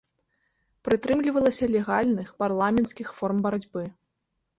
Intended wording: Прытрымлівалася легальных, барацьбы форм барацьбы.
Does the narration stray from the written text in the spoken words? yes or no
yes